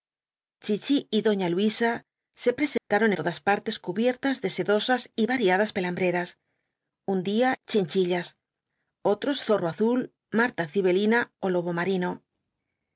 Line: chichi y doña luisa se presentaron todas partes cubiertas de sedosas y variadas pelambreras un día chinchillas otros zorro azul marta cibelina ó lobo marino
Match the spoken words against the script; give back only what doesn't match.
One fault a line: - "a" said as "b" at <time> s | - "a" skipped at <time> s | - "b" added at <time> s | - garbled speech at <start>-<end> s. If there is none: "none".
none